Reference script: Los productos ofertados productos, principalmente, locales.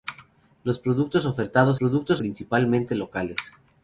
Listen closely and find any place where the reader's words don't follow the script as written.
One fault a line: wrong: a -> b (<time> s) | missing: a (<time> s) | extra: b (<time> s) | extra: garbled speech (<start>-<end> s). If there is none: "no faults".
no faults